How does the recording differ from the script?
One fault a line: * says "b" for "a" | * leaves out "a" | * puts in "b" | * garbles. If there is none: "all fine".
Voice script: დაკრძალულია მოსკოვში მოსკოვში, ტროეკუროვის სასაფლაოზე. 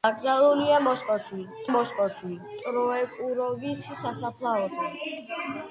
all fine